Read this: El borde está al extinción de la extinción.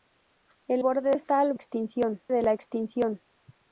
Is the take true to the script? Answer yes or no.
yes